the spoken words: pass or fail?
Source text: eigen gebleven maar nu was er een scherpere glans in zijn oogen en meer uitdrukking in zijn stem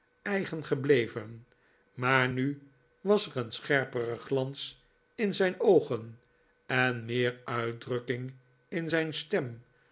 pass